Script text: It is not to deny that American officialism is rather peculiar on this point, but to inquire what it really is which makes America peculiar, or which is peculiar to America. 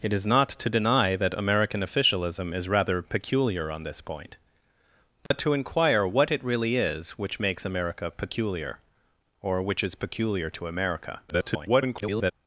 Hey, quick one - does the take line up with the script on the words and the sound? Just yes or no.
no